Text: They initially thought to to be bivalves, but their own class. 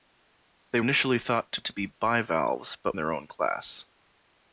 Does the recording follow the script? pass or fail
pass